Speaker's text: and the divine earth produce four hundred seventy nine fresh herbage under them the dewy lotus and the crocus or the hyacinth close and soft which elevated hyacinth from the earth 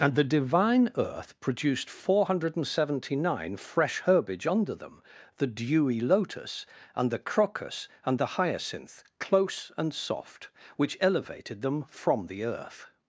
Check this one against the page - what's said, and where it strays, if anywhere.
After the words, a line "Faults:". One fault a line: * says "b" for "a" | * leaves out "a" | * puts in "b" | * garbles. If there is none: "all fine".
and the divine earth produced four hundred seventy nine fresh herbage under them the dewy lotus and the crocus and the hyacinth close and soft which elevated them from the earth
Faults:
* says "produced" for "produce"
* says "and" for "or"
* says "them" for "hyacinth"